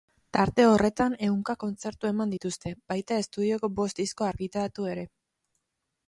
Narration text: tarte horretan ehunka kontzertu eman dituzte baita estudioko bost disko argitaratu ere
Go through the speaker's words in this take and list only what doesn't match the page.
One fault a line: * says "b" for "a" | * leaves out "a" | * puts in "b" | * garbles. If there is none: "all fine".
all fine